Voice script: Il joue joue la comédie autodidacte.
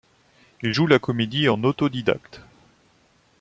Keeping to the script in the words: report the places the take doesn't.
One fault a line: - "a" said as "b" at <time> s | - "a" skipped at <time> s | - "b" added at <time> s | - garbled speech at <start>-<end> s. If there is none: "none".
- "joue" skipped at 0.9 s
- "en" added at 1.5 s